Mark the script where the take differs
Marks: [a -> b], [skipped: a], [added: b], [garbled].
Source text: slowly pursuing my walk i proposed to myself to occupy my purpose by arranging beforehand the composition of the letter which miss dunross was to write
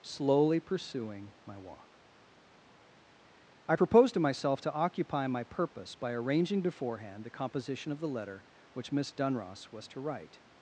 slowly pursuing my walk i proposed to myself to occupy my purpose by arranging beforehand the composition of the letter which miss dunross was to write